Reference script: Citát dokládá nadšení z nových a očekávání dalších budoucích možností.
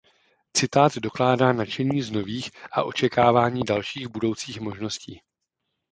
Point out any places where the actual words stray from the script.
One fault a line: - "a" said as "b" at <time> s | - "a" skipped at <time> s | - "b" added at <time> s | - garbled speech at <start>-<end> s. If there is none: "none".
none